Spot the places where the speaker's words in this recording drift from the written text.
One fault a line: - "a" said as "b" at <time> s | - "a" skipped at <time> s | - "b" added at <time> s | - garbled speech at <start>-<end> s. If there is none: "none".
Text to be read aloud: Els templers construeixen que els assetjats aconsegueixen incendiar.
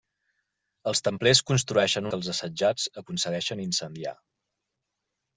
none